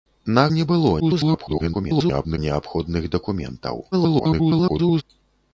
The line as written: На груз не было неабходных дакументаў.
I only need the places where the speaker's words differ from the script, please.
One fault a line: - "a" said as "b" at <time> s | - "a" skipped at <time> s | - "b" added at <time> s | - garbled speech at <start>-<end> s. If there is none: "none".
- "груз" skipped at 0.5 s
- garbled speech at 1.0-2.4 s
- garbled speech at 3.9-5.0 s